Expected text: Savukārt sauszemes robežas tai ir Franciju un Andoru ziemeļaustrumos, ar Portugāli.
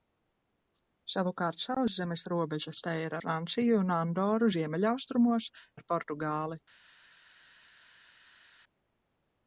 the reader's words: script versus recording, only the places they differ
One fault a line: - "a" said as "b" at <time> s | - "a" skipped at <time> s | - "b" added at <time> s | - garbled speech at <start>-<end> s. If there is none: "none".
none